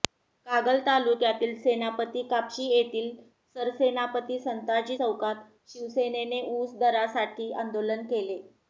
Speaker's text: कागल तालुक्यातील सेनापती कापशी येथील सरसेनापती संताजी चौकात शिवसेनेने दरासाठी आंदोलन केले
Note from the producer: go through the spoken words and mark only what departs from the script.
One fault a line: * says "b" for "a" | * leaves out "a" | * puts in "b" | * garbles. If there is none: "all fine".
* puts in "ऊस"